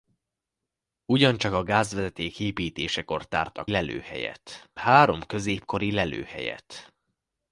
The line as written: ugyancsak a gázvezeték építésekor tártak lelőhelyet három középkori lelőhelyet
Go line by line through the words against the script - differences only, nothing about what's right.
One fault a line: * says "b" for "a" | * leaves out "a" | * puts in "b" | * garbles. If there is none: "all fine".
all fine